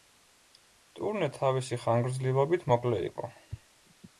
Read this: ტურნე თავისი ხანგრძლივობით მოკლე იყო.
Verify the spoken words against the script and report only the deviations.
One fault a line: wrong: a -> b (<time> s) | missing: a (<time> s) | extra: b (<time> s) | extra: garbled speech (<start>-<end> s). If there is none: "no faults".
no faults